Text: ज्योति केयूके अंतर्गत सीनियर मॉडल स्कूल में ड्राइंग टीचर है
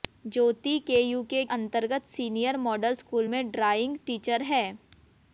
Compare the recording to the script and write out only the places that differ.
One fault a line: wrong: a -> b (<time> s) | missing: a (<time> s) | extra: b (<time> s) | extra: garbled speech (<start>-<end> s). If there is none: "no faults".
no faults